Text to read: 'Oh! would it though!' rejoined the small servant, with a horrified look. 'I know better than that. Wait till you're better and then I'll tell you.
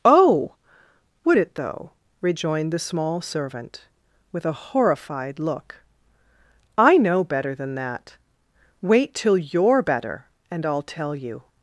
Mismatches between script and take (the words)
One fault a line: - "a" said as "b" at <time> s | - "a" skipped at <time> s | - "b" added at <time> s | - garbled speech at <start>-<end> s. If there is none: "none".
- "then" skipped at 10.6 s